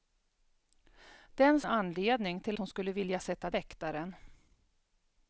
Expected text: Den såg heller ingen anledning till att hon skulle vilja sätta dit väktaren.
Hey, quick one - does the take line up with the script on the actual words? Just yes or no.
no